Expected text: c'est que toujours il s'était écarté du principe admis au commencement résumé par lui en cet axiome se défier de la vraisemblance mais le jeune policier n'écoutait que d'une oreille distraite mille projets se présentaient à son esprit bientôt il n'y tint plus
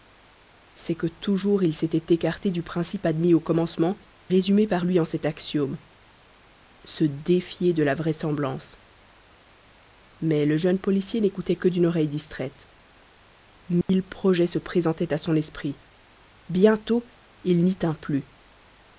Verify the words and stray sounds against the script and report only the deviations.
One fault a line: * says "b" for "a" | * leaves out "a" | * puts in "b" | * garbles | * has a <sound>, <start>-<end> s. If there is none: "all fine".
* has a dropout, 13.8-13.9 s